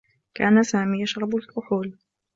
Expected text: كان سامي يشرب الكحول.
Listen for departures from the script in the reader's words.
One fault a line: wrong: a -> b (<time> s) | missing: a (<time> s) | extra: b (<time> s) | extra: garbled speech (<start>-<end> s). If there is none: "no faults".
no faults